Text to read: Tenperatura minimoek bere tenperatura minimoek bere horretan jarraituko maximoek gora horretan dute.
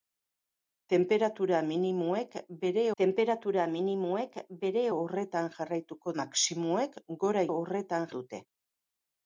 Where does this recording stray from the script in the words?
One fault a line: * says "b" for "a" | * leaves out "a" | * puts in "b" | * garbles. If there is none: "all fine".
all fine